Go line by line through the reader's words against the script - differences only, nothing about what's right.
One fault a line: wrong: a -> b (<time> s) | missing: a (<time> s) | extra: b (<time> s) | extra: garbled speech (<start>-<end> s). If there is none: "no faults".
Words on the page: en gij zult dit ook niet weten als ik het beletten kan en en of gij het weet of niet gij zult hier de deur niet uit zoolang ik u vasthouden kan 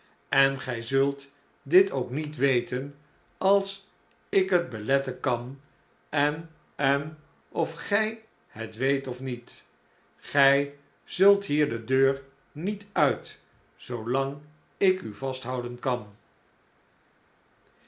no faults